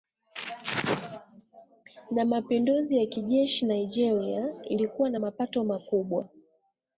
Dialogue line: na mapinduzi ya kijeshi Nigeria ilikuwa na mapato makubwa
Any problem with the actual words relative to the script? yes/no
no